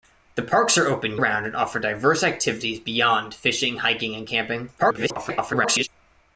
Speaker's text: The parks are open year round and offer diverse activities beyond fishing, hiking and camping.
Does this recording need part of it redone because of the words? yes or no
yes